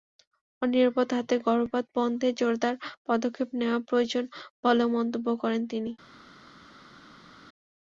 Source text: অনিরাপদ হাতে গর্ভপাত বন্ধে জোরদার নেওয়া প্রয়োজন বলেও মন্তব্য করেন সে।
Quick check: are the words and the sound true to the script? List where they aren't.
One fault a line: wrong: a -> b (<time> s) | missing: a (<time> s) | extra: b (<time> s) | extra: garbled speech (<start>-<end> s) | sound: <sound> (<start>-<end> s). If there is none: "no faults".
extra: পদক্ষেপ (3.1 s)
wrong: সে -> তিনি (5.7 s)